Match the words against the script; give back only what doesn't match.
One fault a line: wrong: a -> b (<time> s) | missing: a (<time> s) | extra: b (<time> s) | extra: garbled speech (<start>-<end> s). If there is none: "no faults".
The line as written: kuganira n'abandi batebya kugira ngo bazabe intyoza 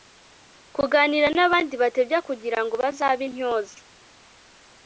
no faults